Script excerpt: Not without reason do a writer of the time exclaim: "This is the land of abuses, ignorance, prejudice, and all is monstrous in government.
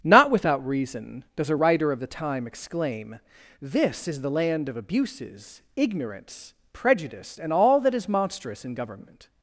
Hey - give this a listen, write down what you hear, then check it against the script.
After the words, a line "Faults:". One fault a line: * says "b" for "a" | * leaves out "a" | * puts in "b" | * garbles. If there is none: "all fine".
Not without reason does a writer of the time exclaim: "This is the land of abuses, ignorance, prejudice, and all that is monstrous in government.
Faults:
* says "does" for "do"
* puts in "that"